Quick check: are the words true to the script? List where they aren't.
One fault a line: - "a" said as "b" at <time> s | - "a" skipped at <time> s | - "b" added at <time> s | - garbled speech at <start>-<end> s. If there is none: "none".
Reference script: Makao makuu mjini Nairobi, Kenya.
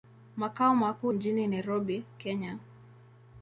none